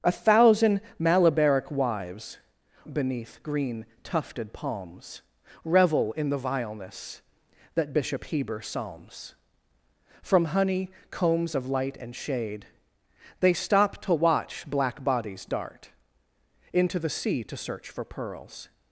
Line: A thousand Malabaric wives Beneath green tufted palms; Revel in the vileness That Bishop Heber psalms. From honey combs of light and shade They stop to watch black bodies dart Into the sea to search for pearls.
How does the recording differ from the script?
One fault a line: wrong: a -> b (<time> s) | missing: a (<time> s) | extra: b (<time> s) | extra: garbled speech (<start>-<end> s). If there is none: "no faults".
no faults